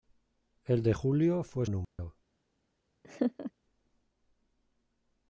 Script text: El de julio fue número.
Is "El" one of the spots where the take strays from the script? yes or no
no